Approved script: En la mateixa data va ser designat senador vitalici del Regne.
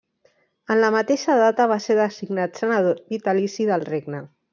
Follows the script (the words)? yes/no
yes